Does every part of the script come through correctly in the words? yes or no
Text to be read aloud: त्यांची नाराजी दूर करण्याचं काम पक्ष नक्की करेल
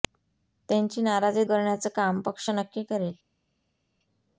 no